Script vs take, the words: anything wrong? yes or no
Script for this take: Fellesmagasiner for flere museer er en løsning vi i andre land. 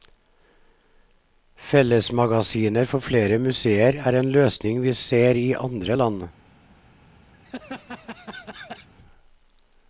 yes